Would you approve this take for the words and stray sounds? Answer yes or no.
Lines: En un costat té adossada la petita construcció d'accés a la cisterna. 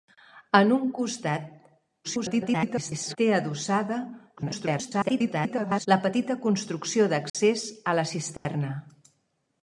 no